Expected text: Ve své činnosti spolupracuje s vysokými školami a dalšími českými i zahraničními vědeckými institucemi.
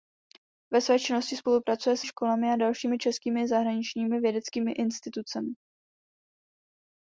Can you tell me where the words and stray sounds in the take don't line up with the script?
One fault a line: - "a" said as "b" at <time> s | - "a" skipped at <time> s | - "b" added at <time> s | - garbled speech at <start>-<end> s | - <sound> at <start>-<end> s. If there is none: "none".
- "vysokými" skipped at 2.0 s